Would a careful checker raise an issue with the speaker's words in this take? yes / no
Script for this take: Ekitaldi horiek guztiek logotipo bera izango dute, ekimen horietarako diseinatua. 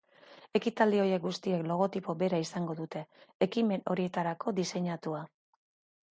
no